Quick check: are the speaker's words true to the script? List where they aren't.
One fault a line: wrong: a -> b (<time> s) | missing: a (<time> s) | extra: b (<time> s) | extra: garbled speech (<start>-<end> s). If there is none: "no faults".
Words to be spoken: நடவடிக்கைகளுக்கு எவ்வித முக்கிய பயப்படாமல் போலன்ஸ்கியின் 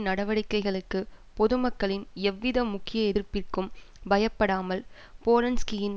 extra: பொதுமக்களின் (1.4 s)
extra: எதிர்ப்பிற்கும் (3.1 s)